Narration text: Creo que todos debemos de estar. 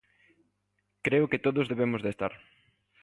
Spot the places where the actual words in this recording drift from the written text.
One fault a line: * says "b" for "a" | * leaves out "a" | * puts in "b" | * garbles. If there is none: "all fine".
all fine